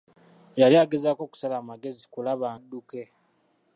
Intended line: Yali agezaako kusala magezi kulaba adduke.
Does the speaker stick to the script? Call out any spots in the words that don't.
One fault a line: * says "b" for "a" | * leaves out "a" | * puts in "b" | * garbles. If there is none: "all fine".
all fine